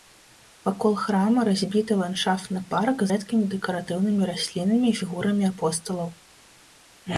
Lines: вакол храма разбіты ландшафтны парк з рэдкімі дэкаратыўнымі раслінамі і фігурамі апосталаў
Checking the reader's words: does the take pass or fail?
fail